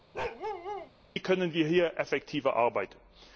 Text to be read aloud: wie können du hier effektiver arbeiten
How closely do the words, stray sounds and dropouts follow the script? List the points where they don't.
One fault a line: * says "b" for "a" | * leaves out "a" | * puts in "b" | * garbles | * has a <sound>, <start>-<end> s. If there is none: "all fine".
* has a bark, 0.1-0.9 s
* says "wir" for "du"